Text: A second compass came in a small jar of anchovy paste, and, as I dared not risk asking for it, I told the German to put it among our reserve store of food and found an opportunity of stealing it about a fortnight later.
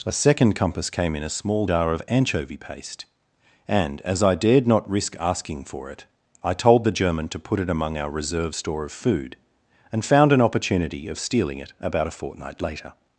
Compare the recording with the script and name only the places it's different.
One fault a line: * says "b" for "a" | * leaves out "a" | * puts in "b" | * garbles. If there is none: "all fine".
all fine